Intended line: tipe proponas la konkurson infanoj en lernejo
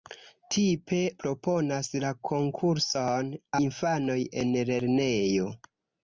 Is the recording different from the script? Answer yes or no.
no